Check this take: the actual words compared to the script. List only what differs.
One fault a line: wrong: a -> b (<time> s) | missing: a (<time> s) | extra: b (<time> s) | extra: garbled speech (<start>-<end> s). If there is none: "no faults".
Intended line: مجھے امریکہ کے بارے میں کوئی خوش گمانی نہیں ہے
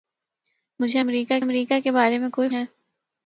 extra: امریکہ (1.4 s)
missing: خوش گمانی نہیں (2.5 s)